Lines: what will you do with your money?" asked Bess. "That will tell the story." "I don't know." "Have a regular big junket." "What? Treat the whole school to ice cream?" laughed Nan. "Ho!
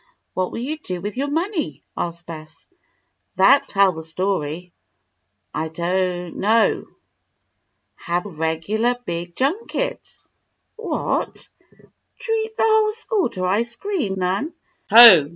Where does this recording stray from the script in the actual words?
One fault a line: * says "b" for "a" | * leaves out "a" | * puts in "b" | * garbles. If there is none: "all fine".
* leaves out "will"
* leaves out "a"
* leaves out "laughed"